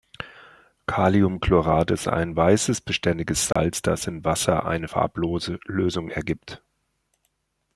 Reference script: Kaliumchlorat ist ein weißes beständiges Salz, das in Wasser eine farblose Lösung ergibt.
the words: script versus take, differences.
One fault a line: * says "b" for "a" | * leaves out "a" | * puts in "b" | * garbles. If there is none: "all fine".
all fine